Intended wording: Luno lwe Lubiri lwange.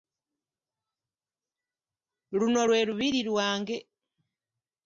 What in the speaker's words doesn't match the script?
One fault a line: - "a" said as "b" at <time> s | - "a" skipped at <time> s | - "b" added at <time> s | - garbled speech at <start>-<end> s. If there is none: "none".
none